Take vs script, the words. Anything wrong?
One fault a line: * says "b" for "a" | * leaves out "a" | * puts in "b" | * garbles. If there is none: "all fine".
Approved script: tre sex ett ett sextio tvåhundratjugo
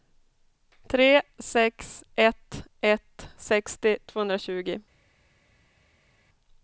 all fine